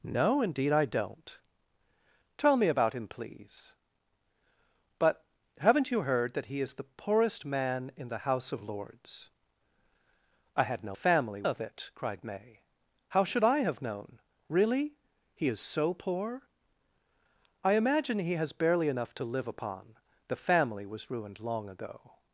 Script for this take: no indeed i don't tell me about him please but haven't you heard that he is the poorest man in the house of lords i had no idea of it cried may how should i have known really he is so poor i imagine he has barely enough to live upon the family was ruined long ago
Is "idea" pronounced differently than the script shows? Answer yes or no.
yes